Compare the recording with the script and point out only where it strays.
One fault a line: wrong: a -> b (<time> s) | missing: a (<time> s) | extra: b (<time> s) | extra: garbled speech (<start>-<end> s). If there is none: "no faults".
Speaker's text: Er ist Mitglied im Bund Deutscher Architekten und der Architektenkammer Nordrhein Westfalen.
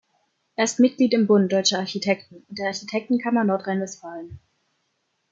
no faults